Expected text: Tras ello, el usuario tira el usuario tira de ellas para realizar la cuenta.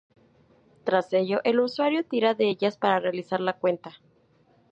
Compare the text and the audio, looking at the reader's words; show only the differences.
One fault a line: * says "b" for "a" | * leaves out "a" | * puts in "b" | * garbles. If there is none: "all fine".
* leaves out "el usuario tira"